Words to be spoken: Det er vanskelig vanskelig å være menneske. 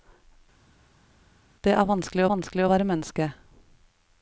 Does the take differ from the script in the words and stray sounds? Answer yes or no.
no